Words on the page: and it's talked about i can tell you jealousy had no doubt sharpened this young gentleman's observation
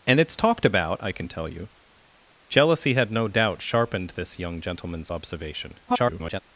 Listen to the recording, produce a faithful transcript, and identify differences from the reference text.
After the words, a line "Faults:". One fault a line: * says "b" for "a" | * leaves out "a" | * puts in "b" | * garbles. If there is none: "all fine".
and it's talked about i can tell you jealousy had no doubt sharpened this young gentleman's observation [garbled]
Faults:
* garbles